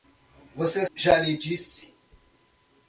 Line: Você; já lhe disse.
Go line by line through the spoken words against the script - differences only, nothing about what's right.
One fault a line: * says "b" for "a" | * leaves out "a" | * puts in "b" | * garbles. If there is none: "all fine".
all fine